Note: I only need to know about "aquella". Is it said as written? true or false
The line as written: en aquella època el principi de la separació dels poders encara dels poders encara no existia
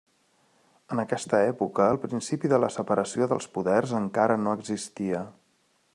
false